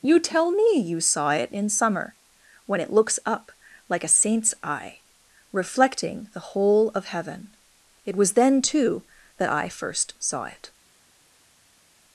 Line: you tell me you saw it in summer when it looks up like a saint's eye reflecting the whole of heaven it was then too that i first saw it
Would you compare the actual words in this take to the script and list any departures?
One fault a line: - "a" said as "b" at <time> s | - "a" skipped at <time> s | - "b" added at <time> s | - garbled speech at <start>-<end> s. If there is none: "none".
none